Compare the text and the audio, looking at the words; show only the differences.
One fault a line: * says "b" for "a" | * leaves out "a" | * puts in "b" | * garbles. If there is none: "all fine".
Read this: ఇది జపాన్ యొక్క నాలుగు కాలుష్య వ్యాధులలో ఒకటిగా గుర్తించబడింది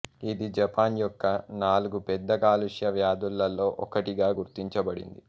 * puts in "పెద్ద"